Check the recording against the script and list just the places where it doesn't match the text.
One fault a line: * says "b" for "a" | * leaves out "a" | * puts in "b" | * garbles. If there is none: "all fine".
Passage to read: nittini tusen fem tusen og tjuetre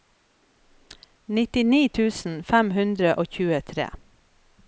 * says "hundre" for "tusen"